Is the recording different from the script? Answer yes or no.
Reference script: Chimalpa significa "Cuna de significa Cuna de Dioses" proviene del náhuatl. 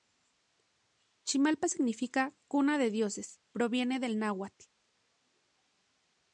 yes